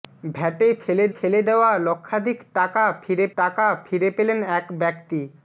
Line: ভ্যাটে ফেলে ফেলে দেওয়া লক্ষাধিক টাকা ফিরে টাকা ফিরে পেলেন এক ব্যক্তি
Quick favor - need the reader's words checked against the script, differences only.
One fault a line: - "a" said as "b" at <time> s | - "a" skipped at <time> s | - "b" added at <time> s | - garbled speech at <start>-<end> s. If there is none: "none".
none